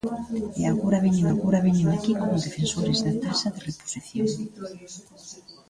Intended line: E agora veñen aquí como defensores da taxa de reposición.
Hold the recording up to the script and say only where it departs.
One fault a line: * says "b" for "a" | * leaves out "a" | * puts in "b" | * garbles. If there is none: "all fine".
* puts in "agora veñen"